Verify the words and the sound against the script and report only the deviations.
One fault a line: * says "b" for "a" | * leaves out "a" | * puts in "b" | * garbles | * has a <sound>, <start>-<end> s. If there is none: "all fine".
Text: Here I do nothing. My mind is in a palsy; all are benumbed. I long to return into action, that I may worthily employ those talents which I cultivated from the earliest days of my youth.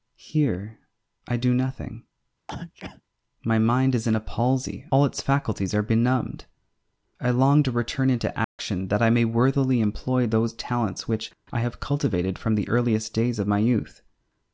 * has a sneeze, 2.5-3.0 s
* puts in "its faculties"
* has a dropout, 8.4-8.6 s
* puts in "have"